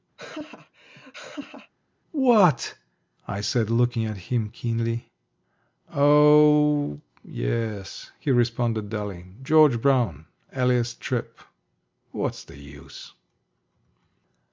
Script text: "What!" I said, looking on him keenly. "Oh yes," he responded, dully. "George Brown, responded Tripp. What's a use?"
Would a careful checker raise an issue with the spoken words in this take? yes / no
yes